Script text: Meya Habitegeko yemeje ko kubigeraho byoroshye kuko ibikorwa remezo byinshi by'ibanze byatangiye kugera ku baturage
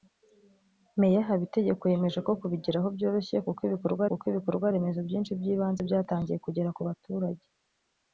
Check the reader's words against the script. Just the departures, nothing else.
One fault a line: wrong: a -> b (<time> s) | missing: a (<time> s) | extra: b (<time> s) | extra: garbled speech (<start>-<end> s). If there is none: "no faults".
extra: kuko ibikorwa (4.1 s)